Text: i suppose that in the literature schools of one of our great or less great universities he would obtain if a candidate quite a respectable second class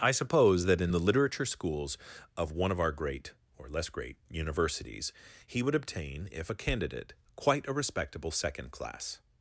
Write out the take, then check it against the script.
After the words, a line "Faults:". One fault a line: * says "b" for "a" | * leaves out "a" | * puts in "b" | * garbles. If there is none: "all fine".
i suppose that in the literature schools of one of our great or less great universities he would obtain if a candidate quite a respectable second class
Faults:
all fine